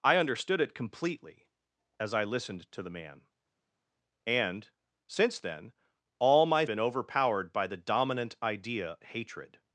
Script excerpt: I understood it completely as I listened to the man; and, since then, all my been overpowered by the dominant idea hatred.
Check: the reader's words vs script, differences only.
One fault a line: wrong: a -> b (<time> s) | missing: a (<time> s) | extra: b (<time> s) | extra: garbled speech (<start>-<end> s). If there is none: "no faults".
no faults